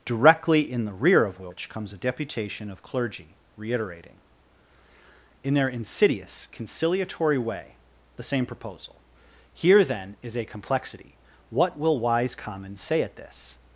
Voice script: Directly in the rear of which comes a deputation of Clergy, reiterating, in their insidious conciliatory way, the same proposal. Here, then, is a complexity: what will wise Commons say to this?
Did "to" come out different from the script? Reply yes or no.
yes